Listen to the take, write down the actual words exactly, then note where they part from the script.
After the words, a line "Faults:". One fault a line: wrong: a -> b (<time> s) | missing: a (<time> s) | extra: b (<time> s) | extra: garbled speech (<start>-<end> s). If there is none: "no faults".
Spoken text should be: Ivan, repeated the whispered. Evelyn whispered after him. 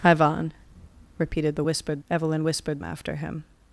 Ivan, repeated the whispered. Evelyn whispered after him.
Faults:
no faults